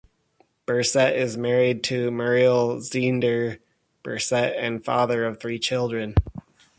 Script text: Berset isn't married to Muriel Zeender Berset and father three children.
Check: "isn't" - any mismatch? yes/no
yes